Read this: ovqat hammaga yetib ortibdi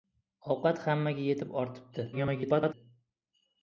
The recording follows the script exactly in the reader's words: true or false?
false